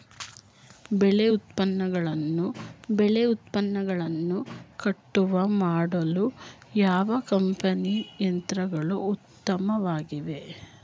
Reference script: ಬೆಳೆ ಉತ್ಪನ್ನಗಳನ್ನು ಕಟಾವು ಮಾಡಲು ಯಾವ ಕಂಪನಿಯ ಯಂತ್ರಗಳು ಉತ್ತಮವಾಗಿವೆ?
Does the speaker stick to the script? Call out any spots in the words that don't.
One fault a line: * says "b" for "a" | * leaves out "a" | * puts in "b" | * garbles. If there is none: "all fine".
* puts in "ಬೆಳೆ ಉತ್ಪನ್ನಗಳನ್ನು"